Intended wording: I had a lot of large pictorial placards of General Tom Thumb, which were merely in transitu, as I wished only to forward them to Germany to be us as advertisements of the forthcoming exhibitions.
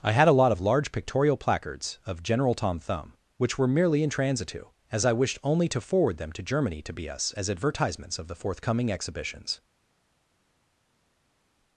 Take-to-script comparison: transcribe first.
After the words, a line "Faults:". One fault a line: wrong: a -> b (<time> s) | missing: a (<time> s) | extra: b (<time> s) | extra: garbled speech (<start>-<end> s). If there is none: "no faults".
I had a lot of large pictorial placards of General Tom Thumb, which were merely in transitu, as I wished only to forward them to Germany to be us as advertisements of the forthcoming exhibitions.
Faults:
no faults